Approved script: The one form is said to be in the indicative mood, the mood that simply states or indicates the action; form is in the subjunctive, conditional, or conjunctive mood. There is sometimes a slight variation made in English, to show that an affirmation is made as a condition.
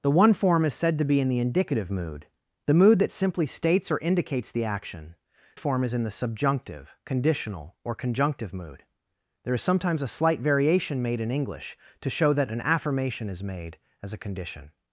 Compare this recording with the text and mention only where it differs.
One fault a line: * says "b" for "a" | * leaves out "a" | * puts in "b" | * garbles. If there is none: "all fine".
all fine